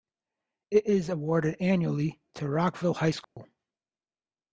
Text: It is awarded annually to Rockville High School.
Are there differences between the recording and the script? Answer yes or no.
no